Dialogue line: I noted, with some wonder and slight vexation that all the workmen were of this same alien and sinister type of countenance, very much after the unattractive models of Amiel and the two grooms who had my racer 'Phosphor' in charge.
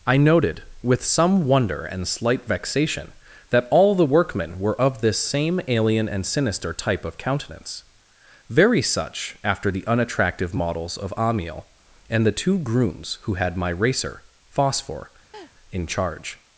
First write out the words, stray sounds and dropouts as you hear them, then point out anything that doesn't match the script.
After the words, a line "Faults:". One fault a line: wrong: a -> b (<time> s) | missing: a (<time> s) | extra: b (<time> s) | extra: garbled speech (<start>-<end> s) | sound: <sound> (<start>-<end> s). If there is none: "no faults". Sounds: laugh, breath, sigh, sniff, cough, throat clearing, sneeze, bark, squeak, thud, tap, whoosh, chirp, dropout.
I noted, with some wonder and slight vexation that all the workmen were of this same alien and sinister type of countenance, very such after the unattractive models of Amiel and the two grooms who had my racer 'Phosphor' in charge.
Faults:
wrong: much -> such (8.8 s)
sound: laugh (15.3-15.5 s)